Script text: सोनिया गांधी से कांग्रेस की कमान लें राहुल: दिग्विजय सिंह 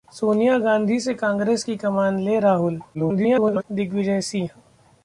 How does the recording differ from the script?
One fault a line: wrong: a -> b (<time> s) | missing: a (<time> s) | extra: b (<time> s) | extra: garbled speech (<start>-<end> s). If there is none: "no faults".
extra: garbled speech (2.9-3.6 s)